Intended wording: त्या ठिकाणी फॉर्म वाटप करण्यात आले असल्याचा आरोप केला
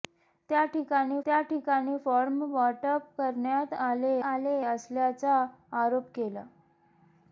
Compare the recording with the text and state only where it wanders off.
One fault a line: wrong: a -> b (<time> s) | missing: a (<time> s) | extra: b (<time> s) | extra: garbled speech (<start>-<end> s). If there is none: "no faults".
extra: त्या ठिकाणी (1.3 s)
extra: आले (4.2 s)